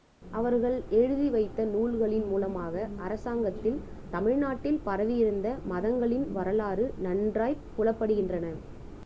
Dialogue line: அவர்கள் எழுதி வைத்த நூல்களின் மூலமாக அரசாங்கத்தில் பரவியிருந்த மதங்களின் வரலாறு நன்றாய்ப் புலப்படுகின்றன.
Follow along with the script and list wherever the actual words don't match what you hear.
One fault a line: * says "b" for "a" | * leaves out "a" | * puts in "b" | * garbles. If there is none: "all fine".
* puts in "தமிழ்நாட்டில்"